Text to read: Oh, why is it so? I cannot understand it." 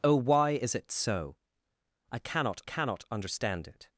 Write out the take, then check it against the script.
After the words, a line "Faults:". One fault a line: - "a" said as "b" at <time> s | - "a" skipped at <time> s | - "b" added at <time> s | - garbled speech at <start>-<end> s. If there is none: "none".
Oh, why is it so? I cannot cannot understand it."
Faults:
- "cannot" added at 2.6 s